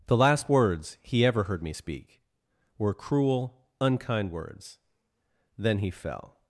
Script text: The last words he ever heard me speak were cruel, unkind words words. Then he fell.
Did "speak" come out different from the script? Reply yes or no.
no